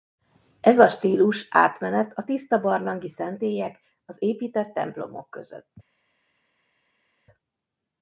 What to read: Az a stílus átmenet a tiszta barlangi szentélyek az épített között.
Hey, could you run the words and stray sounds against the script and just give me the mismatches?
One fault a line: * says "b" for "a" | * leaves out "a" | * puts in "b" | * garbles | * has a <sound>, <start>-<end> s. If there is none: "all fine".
* says "Ez" for "Az"
* puts in "templomok"